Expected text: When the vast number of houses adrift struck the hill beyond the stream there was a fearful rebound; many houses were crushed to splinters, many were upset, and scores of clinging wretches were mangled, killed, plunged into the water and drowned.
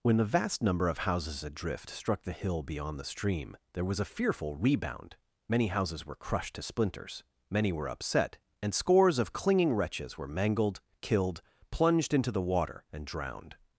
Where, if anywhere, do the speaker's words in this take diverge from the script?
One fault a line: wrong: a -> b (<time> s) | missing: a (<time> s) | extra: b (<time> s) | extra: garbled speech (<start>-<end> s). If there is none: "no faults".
no faults